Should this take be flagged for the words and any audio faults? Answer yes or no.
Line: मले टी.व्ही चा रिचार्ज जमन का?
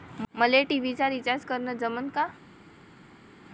yes